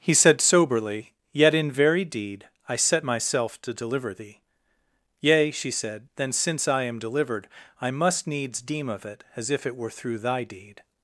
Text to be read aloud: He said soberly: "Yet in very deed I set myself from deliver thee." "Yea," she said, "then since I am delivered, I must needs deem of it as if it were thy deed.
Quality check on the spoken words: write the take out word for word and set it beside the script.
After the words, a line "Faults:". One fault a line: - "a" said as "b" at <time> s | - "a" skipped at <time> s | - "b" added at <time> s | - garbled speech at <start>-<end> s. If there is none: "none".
He said soberly: "Yet in very deed I set myself to deliver thee." "Yea," she said, "then since I am delivered, I must needs deem of it as if it were through thy deed.
Faults:
- "from" said as "to" at 3.6 s
- "through" added at 9.9 s